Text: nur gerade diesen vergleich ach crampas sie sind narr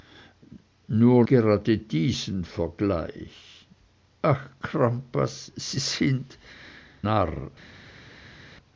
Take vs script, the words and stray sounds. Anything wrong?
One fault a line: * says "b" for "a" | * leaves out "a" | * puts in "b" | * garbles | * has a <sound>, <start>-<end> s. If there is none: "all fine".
all fine